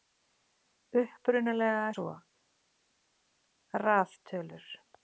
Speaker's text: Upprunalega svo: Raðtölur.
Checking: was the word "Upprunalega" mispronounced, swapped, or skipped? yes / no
no